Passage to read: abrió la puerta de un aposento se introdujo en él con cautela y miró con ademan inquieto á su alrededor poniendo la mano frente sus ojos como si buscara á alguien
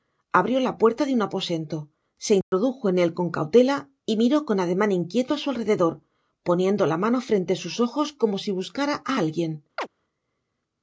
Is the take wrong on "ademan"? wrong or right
right